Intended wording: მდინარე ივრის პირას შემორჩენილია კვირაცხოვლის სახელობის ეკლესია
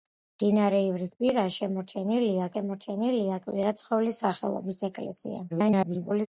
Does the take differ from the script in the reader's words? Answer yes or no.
yes